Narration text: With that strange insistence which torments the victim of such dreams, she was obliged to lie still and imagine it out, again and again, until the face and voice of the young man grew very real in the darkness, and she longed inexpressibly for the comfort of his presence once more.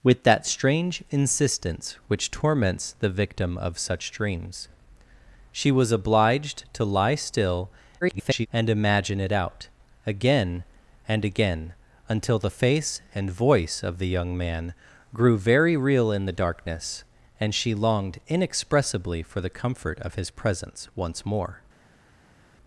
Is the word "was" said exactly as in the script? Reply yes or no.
yes